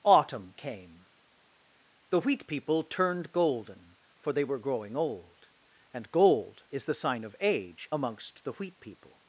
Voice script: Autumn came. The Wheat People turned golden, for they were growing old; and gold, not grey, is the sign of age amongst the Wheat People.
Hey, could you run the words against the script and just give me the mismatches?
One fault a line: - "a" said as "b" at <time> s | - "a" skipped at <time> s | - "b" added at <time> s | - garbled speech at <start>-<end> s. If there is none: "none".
- "not grey" skipped at 6.6 s